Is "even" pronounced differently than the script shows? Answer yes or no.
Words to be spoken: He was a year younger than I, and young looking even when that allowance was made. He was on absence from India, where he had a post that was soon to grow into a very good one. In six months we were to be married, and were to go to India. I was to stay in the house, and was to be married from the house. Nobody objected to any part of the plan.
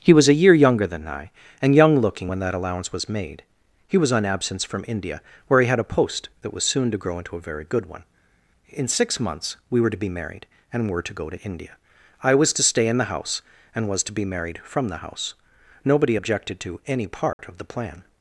yes